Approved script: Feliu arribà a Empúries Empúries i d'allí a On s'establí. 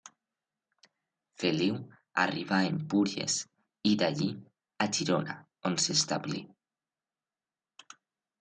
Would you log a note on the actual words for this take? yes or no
yes